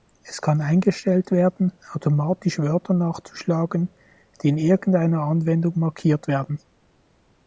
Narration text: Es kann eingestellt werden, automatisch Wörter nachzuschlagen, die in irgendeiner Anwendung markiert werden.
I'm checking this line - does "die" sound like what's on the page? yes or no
yes